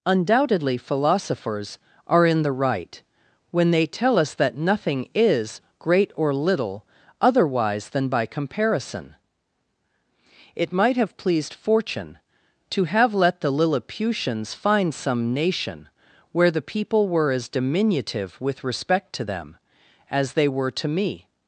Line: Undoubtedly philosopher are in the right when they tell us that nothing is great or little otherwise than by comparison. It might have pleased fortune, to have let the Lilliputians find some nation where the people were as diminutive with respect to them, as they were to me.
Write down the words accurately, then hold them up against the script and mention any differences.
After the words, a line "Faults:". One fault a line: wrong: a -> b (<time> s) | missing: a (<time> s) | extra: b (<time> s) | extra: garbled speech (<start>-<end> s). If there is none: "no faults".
Undoubtedly philosophers are in the right when they tell us that nothing is great or little otherwise than by comparison. It might have pleased fortune, to have let the Lilliputians find some nation where the people were as diminutive with respect to them, as they were to me.
Faults:
wrong: philosopher -> philosophers (0.8 s)